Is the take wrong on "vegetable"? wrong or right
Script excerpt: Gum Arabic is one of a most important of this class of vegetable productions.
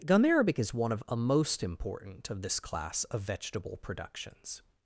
right